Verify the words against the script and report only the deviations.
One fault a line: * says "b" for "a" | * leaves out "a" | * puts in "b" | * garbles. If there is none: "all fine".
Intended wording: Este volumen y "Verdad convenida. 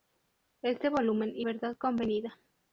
all fine